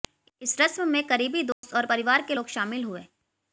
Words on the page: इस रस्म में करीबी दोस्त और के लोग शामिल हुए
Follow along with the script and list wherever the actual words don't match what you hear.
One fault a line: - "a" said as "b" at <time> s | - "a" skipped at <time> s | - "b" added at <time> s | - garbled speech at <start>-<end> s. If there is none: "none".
- "परिवार" added at 1.8 s